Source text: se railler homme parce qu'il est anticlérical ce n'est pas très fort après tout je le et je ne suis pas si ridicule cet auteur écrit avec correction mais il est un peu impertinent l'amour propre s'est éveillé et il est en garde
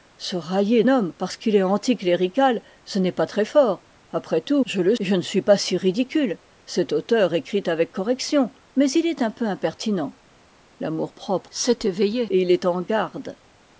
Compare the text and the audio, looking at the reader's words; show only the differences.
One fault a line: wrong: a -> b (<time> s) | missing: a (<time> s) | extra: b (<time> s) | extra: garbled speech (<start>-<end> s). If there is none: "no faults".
no faults